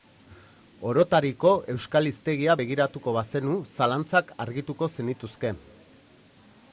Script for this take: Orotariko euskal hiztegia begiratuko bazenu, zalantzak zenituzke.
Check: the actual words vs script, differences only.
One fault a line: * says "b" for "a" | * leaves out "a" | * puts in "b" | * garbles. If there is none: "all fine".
* puts in "argituko"